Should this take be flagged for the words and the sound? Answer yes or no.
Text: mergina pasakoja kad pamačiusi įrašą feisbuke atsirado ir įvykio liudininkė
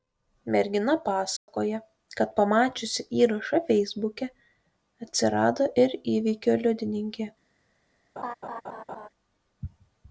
yes